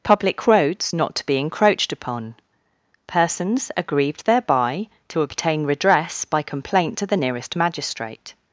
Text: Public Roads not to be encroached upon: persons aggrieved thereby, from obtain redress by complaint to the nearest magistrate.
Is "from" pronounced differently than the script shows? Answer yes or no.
yes